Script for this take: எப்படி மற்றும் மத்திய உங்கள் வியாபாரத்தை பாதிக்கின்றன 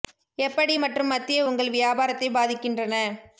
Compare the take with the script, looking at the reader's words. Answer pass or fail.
pass